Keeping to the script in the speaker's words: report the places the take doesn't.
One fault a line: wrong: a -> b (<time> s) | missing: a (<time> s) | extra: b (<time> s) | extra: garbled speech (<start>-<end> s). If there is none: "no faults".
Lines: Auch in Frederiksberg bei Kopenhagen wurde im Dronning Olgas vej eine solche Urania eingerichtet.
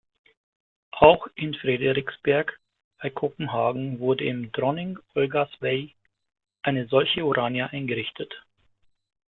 no faults